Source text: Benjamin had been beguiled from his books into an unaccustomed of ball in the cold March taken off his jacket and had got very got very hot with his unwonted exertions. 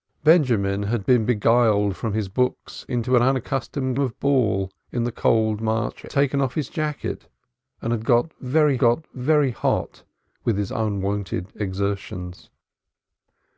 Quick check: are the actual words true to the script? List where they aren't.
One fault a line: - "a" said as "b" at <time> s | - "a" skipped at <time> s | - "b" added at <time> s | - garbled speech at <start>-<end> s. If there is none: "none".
none